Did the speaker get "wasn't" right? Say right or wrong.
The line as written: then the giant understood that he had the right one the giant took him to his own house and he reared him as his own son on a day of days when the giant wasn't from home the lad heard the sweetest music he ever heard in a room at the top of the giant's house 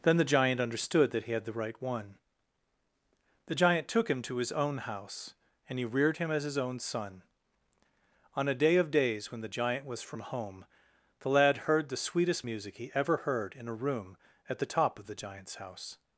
wrong